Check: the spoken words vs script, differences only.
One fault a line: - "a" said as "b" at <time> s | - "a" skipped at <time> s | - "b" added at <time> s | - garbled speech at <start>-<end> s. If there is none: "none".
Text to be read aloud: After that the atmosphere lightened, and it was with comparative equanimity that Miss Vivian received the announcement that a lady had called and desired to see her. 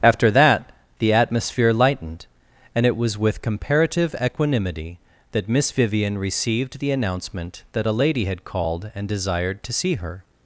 none